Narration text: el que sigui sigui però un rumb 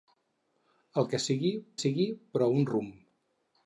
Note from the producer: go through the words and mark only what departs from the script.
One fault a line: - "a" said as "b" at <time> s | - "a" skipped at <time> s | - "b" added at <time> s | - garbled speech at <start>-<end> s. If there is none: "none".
none